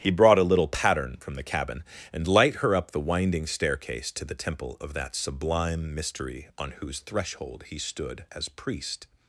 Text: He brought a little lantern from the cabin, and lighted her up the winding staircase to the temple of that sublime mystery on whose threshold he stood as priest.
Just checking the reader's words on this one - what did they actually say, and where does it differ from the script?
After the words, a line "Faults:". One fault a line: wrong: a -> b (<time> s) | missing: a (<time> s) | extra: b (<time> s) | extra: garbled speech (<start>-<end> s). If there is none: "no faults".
He brought a little pattern from the cabin, and light her up the winding staircase to the temple of that sublime mystery on whose threshold he stood as priest.
Faults:
wrong: lantern -> pattern (0.7 s)
wrong: lighted -> light (2.3 s)